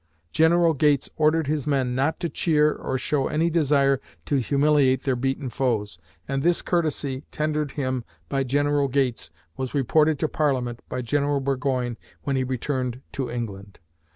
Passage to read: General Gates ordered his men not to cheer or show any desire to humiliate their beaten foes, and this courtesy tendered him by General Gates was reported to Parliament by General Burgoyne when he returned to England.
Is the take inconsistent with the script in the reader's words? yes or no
no